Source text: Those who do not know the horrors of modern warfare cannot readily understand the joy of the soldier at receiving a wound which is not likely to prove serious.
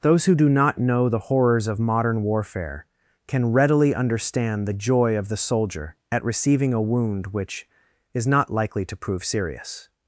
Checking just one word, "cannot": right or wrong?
wrong